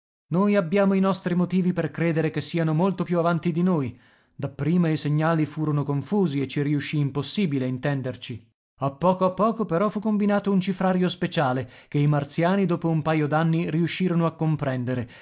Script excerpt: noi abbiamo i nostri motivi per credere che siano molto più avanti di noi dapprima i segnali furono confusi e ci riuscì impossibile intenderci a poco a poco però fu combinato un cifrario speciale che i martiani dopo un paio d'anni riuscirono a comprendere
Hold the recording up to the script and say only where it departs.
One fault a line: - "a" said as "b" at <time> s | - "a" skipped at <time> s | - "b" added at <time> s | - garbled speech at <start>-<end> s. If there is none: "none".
none